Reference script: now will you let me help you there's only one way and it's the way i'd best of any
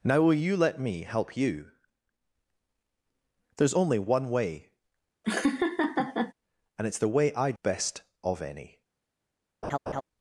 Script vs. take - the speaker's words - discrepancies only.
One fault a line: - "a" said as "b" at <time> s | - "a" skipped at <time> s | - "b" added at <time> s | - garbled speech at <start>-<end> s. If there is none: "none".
none